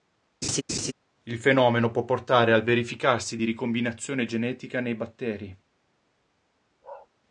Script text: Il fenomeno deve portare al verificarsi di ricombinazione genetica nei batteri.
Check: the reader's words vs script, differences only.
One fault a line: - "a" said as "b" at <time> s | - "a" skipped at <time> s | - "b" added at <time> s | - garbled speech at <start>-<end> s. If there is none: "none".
- "deve" said as "può" at 1.9 s